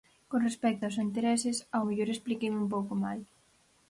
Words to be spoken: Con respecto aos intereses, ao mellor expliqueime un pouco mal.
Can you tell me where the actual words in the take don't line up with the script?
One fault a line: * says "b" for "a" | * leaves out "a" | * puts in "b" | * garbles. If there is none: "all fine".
all fine